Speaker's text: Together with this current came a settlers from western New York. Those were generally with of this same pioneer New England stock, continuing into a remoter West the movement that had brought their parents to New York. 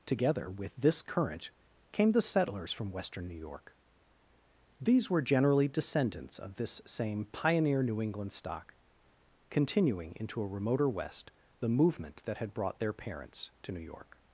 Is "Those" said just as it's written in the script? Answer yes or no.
no